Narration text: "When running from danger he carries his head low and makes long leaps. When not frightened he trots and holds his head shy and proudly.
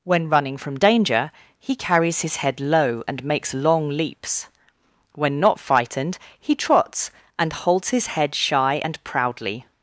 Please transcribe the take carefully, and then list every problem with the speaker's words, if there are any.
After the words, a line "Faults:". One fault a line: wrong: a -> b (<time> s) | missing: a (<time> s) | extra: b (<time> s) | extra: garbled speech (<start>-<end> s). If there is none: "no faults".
"When running from danger he carries his head low and makes long leaps. When not frightened he trots and holds his head shy and proudly.
Faults:
no faults